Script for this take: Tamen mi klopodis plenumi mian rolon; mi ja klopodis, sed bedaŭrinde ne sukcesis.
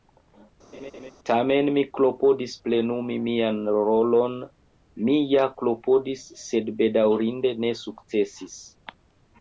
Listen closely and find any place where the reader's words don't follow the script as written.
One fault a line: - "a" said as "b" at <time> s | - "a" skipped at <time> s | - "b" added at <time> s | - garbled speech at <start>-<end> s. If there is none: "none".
none